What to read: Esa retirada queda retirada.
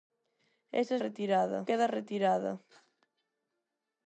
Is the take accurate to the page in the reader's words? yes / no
yes